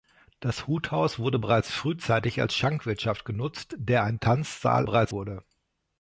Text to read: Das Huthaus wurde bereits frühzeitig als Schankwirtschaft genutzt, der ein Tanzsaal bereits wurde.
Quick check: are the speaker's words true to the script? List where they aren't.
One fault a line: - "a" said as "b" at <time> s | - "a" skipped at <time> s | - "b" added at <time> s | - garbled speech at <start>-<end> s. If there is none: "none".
none